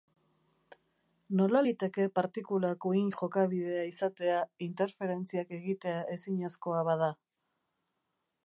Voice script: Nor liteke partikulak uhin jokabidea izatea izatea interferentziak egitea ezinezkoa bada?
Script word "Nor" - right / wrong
wrong